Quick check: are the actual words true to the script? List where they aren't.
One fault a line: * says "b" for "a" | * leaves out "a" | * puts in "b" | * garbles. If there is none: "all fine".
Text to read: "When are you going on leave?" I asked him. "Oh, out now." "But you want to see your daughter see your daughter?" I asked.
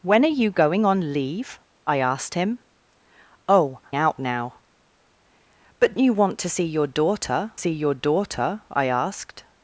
all fine